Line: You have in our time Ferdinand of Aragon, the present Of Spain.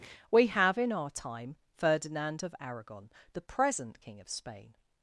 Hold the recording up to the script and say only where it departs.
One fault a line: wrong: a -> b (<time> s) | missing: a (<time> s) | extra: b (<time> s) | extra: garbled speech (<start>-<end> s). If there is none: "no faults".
wrong: You -> We (0.3 s)
extra: King (4.0 s)